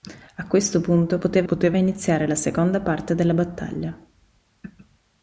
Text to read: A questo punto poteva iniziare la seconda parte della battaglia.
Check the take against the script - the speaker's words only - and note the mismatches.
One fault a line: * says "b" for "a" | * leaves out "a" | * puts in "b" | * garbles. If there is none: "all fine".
* puts in "poteva"